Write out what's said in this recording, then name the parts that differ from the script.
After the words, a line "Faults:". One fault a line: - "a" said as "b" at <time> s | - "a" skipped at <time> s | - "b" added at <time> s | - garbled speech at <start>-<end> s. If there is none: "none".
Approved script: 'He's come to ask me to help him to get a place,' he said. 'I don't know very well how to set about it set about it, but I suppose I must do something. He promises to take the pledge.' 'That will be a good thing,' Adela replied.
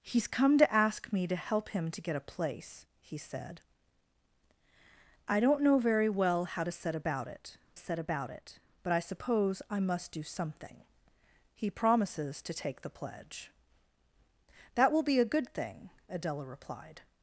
'He's come to ask me to help him to get a place,' he said. 'I don't know very well how to set about it set about it, but I suppose I must do something. He promises to take the pledge.' 'That will be a good thing,' Adela replied.
Faults:
none